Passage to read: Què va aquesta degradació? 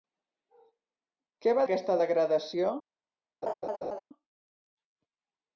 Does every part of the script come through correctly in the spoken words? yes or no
yes